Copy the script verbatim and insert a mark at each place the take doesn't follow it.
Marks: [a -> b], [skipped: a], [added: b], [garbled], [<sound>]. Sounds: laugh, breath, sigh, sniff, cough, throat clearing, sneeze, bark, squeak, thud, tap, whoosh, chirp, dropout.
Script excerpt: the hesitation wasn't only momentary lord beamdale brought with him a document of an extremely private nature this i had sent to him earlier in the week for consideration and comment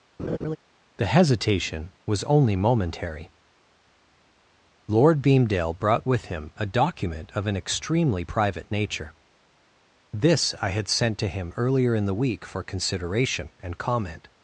[laugh] the hesitation [wasn't -> was] only momentary lord beamdale brought with him a document of an extremely private nature this i had sent to him earlier in the week for consideration and comment